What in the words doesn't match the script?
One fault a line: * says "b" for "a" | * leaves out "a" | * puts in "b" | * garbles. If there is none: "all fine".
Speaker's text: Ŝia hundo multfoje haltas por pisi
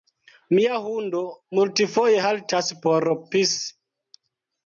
* says "Mia" for "Ŝia"